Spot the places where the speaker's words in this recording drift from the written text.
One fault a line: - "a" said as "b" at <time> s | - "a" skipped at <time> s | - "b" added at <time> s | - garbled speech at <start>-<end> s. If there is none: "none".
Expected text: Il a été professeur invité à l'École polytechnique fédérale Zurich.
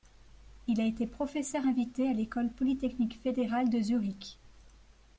- "de" added at 3.7 s